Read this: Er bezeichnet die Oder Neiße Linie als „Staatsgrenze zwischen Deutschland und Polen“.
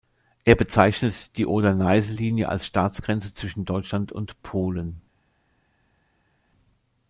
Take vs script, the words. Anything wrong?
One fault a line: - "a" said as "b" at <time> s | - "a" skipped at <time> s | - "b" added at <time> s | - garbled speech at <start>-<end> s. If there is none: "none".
none